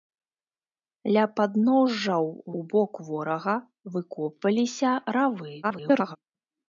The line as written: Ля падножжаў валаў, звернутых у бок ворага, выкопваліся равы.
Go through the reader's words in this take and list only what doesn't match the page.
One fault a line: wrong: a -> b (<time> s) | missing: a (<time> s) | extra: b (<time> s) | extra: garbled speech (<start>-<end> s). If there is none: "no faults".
missing: валаў звернутых (2.2 s)
extra: garbled speech (5.6-6.2 s)